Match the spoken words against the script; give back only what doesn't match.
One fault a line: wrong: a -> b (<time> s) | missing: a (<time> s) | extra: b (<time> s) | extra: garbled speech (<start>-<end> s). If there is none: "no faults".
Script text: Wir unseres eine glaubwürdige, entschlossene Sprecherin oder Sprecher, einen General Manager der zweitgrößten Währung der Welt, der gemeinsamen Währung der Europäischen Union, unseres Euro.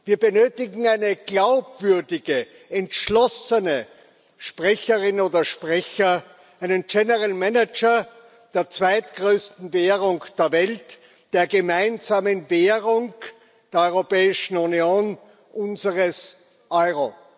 wrong: unseres -> benötigen (0.2 s)